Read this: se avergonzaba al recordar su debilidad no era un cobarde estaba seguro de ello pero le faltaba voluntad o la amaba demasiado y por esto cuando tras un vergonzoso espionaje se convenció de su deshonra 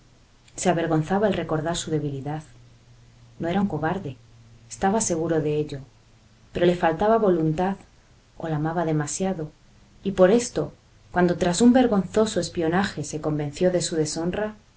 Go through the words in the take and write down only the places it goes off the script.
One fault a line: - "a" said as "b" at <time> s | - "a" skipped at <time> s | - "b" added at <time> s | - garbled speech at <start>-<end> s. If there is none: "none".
none